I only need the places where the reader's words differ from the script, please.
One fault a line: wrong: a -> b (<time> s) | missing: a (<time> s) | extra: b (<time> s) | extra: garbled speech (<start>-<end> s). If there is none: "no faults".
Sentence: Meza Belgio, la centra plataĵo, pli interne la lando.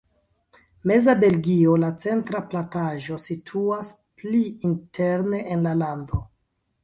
extra: situas (3.3 s)
extra: en (5.6 s)